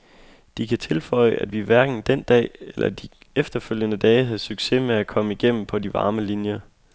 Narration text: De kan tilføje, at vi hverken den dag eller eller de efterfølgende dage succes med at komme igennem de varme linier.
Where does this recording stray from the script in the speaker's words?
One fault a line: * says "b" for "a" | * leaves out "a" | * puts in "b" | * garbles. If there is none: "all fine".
* leaves out "eller"
* puts in "havde"
* puts in "på"